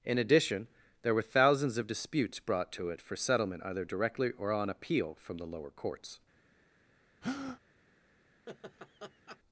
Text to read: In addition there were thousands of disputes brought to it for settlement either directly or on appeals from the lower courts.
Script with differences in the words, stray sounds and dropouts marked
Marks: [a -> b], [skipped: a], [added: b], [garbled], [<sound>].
In addition there were thousands of disputes brought to it for settlement either directly or on [appeals -> appeal] from the lower courts. [breath] [laugh]